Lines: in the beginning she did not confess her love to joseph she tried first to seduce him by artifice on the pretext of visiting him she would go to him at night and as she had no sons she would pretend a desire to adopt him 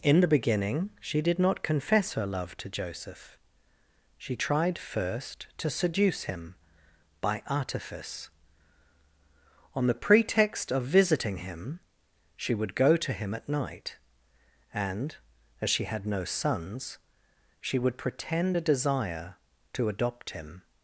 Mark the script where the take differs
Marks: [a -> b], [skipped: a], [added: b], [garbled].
in the beginning she did not confess her love to joseph she tried first to seduce him by artifice on the pretext of visiting him she would go to him at night and as she had no sons she would pretend a desire to adopt him